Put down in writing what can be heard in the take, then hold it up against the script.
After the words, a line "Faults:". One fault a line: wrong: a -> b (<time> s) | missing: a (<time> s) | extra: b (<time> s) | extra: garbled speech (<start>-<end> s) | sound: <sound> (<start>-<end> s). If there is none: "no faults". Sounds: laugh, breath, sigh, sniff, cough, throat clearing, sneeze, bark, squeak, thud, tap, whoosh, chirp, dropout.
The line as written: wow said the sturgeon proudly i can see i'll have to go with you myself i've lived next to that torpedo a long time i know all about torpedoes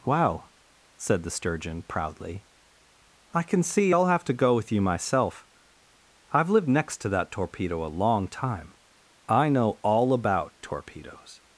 wow said the sturgeon proudly i can see i'll have to go with you myself i've lived next to that torpedo a long time i know all about torpedoes
Faults:
no faults